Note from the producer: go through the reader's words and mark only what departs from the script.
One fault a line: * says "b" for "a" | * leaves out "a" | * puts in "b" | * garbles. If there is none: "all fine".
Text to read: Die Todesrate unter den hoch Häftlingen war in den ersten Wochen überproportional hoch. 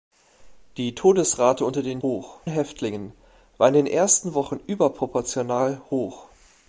all fine